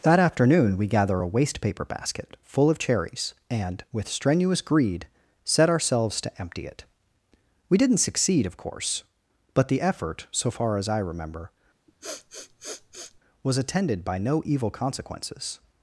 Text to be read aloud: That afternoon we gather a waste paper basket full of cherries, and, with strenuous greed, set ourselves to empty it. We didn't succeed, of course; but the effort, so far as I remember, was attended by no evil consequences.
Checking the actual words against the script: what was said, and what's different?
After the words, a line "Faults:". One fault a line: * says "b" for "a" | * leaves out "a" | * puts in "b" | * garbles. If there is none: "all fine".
That afternoon we gather a waste paper basket full of cherries, and, with strenuous greed, set ourselves to empty it. We didn't succeed, of course; but the effort, so far as I remember, was attended by no evil consequences.
Faults:
all fine